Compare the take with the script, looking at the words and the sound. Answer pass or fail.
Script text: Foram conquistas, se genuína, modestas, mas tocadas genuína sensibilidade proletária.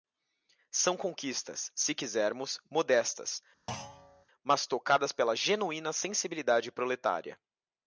fail